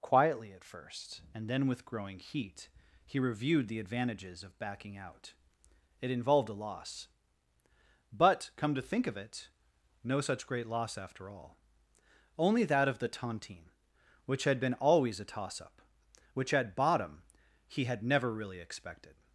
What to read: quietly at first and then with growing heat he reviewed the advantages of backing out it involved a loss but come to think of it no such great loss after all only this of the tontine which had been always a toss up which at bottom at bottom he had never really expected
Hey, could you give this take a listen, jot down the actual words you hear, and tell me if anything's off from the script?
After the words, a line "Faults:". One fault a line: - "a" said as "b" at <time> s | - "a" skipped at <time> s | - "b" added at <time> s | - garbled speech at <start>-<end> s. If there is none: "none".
quietly at first and then with growing heat he reviewed the advantages of backing out it involved a loss but come to think of it no such great loss after all only that of the tontine which had been always a toss up which at bottom he had never really expected
Faults:
- "this" said as "that" at 12.6 s
- "at bottom" skipped at 17.2 s